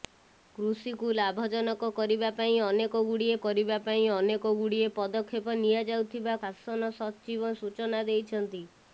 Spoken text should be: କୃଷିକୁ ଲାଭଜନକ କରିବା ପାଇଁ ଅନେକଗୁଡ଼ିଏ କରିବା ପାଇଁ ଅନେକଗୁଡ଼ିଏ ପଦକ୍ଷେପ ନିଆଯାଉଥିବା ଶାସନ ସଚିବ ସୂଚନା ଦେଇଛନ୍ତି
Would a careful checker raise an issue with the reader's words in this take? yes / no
no